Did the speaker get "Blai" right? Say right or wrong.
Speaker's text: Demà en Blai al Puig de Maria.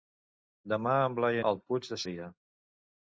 right